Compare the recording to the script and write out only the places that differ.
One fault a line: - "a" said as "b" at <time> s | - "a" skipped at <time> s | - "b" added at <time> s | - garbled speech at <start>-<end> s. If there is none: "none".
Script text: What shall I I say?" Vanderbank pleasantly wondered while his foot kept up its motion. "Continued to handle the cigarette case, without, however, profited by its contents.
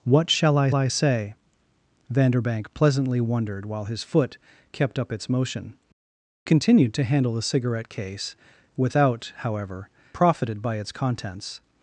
none